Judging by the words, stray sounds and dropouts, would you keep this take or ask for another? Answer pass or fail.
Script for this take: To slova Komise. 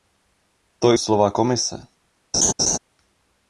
fail